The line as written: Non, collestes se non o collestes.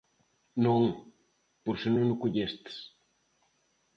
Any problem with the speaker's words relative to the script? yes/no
yes